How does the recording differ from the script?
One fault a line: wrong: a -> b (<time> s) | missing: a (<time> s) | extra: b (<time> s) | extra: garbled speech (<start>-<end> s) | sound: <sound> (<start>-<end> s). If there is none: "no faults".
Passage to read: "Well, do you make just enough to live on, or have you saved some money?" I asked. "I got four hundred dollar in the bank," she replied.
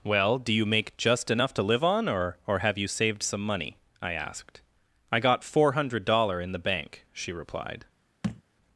extra: or (2.5 s)
sound: thud (8.2-8.4 s)